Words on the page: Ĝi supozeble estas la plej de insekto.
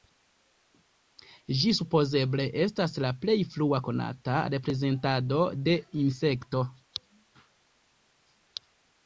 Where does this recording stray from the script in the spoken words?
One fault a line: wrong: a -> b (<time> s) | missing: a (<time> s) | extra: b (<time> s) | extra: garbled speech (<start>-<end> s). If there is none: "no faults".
extra: frua konata reprezentado (3.6 s)